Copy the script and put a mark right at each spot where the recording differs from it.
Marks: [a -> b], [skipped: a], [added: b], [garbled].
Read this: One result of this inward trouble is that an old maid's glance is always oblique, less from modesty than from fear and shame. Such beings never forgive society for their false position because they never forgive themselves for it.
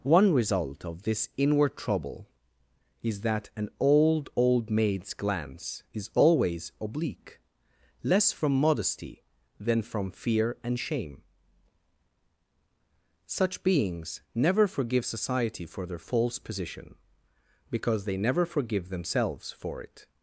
One result of this inward trouble is that an old [added: old] maid's glance is always oblique, less from modesty than from fear and shame. Such beings never forgive society for their false position because they never forgive themselves for it.